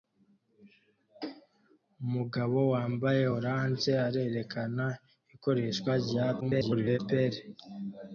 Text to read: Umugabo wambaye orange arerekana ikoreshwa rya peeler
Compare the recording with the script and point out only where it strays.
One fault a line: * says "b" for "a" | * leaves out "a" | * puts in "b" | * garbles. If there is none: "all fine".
* garbles